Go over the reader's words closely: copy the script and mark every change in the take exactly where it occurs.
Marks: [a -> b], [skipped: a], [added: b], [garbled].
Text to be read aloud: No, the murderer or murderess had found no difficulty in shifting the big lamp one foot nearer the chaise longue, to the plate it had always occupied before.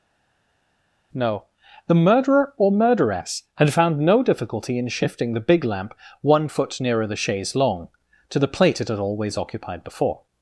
No, the murderer or murderess had found no difficulty in shifting the big lamp one foot nearer the chaise longue, to the plate it had always occupied before.